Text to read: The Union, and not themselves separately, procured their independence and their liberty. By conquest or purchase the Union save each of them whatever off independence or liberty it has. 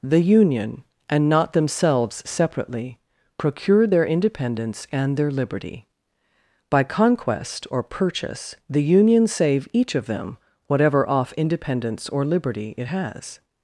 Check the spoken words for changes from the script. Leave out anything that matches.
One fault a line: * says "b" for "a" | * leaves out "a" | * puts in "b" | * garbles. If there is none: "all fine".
all fine